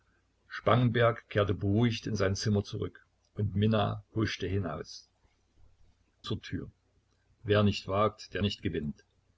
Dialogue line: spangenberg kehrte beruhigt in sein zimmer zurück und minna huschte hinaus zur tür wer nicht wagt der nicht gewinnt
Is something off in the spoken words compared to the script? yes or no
no